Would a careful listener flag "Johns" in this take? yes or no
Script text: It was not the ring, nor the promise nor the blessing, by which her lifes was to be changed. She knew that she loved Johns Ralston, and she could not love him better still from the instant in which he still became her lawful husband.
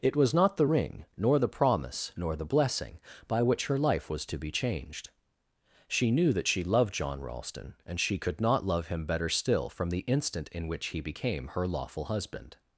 yes